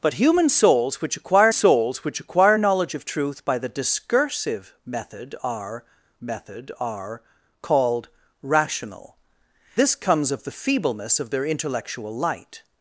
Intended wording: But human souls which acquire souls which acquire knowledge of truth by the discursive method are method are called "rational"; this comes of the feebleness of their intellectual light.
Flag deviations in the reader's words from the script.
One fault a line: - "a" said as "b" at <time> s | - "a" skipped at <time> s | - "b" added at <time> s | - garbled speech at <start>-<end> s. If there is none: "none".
none